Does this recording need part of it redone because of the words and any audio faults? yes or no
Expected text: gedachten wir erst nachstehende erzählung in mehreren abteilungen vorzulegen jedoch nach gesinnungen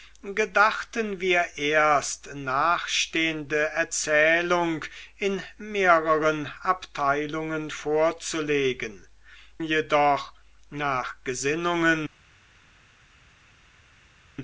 no